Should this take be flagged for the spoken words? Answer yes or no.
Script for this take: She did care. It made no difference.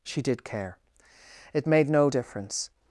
no